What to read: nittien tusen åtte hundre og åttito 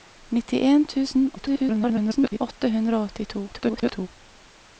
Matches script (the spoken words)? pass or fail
fail